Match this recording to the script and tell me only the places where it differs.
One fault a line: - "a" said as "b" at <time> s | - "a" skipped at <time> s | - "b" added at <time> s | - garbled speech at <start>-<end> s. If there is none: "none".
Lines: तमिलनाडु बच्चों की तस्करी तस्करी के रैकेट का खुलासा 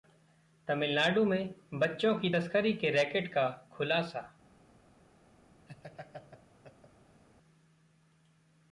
- "में" added at 1.2 s
- "तस्करी" skipped at 2.7 s